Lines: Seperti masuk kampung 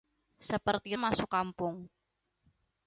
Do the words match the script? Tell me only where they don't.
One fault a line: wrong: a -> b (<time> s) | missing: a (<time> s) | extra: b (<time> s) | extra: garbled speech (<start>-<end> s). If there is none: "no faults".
no faults